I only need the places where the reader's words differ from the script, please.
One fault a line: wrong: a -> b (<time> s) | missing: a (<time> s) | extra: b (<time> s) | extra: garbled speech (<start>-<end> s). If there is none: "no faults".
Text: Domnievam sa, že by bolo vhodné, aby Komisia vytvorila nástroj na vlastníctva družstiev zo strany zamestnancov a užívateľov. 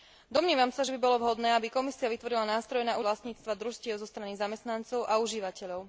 no faults